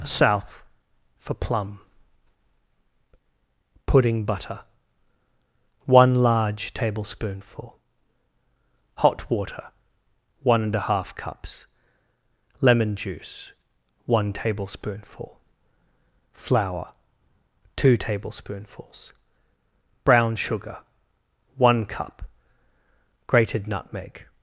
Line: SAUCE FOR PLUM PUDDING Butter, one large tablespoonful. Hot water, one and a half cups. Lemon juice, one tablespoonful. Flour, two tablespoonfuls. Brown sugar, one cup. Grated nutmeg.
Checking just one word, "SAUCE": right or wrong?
wrong